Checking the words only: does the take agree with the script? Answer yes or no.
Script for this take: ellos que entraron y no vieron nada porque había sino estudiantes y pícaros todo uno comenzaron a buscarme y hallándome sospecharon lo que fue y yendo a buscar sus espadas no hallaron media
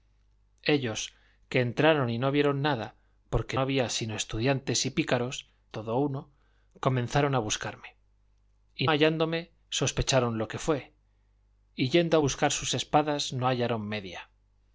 yes